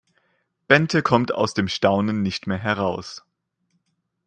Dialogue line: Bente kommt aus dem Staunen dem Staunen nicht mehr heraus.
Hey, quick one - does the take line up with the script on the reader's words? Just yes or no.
no